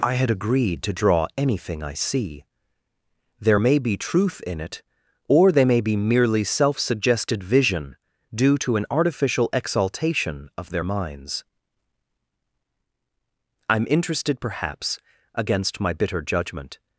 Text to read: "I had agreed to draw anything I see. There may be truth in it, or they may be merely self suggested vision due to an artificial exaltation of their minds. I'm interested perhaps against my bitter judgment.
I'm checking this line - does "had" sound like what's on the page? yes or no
yes